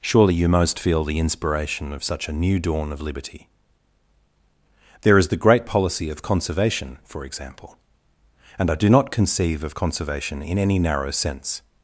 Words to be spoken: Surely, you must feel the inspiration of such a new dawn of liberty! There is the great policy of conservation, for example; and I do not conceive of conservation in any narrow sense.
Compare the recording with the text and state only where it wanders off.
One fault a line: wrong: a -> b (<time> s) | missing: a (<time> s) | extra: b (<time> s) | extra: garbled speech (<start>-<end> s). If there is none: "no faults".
wrong: must -> most (0.5 s)